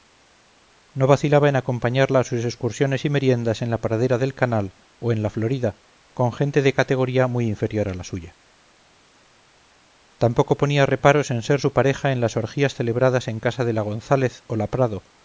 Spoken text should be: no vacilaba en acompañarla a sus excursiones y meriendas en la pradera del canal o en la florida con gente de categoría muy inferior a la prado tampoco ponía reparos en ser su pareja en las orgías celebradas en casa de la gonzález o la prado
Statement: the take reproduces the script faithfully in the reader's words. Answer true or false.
false